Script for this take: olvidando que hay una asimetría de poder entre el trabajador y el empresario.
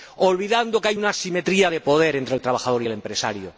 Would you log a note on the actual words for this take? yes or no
no